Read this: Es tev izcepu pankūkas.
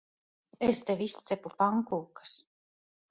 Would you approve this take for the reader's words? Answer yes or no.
yes